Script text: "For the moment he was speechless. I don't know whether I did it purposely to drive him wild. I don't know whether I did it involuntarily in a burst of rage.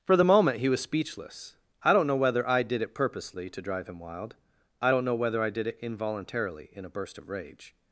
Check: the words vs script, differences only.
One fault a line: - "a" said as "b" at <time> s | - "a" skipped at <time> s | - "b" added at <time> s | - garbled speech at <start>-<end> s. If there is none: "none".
none